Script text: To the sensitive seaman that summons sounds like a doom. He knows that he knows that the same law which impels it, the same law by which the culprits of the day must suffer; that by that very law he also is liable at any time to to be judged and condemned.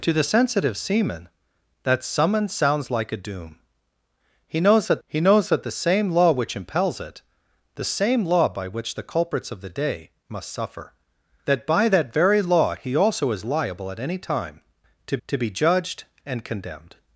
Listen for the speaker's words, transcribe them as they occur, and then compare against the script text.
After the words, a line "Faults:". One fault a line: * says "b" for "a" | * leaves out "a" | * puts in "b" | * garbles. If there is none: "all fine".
To the sensitive seaman that summons sounds like a doom. He knows that he knows that the same law which impels it, the same law by which the culprits of the day must suffer; that by that very law he also is liable at any time to to be judged and condemned.
Faults:
all fine